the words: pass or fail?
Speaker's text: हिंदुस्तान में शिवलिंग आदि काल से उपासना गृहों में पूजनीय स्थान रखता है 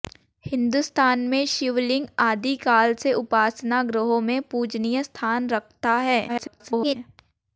fail